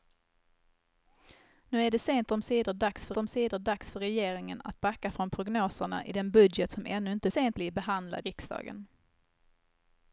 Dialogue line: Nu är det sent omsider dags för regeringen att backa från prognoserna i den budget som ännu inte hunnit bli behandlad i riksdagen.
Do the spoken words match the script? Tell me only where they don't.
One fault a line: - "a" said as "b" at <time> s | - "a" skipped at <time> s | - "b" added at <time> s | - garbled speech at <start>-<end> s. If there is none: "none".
- "omsider dags för" added at 3.2 s
- "hunnit" said as "sent" at 7.3 s
- "i" skipped at 8.3 s